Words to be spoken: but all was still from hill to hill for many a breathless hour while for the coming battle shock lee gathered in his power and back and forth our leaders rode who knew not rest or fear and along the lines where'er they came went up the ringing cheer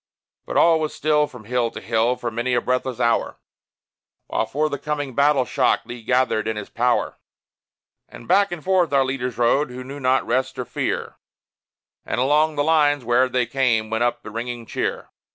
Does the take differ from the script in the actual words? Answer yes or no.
no